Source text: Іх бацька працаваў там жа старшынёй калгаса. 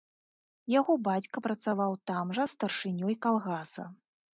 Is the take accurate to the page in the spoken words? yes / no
no